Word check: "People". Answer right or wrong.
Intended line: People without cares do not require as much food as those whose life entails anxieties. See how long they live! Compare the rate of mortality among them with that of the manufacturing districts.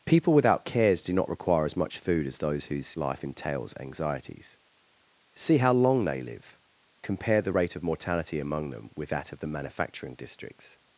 right